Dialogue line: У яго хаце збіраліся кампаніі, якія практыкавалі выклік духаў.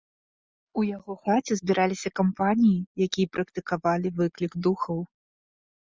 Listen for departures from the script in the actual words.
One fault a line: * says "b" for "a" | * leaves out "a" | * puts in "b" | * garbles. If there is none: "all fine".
all fine